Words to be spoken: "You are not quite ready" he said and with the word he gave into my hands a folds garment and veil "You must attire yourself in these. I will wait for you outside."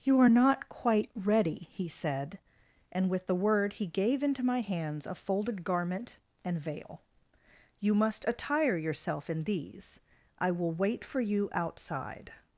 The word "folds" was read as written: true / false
false